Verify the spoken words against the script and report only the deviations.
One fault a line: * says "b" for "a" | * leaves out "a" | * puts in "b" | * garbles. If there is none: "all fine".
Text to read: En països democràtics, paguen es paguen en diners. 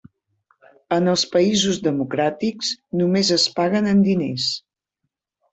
* puts in "els"
* says "només" for "paguen"